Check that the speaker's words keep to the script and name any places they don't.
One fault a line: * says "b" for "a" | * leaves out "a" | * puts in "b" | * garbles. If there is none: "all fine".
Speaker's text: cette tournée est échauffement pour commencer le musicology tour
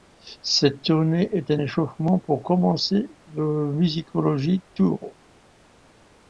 * puts in "un"